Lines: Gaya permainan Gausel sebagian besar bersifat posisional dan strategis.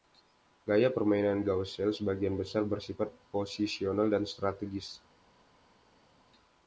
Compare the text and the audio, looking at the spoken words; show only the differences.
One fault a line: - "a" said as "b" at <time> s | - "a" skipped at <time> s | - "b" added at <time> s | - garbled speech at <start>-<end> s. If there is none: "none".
none